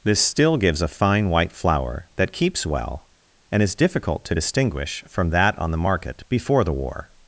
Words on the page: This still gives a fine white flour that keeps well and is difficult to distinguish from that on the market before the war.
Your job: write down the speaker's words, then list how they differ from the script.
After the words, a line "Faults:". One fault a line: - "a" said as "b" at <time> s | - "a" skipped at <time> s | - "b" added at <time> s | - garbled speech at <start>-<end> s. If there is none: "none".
This still gives a fine white flour that keeps well and is difficult to distinguish from that on the market before the war.
Faults:
none